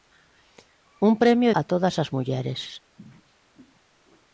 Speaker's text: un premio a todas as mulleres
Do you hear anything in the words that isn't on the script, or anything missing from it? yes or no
no